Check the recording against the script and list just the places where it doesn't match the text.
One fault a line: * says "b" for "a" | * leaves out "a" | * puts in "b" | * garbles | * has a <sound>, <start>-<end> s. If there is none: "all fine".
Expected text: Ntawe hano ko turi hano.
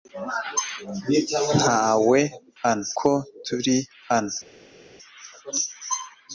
all fine